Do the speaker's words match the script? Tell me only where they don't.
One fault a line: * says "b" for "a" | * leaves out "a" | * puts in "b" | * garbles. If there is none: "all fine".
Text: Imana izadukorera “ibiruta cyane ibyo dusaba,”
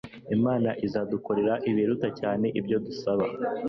all fine